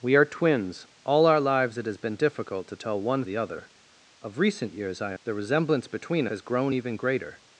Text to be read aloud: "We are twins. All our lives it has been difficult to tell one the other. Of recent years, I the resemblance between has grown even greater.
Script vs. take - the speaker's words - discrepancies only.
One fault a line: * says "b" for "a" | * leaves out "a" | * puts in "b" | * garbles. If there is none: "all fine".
all fine